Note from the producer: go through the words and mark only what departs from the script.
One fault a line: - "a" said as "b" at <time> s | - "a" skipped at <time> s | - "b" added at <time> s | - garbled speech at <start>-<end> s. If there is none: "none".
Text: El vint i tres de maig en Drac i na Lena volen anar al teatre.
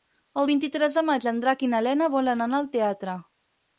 none